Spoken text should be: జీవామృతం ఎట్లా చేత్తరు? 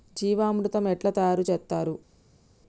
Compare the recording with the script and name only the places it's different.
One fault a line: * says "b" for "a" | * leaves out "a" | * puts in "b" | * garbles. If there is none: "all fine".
* puts in "తయారు"